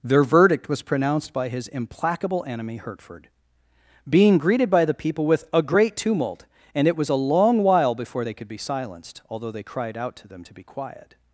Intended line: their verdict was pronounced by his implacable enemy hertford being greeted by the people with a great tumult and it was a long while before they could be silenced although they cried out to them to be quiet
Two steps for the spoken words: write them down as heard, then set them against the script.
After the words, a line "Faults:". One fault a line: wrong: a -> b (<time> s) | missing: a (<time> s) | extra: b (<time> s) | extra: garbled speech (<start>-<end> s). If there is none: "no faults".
their verdict was pronounced by his implacable enemy hertford being greeted by the people with a great tumult and it was a long while before they could be silenced although they cried out to them to be quiet
Faults:
no faults